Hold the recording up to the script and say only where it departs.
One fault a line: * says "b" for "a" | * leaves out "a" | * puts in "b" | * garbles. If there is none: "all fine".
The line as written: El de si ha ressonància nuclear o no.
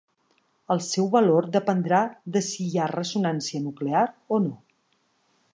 * puts in "seu valor dependrà"
* puts in "hi"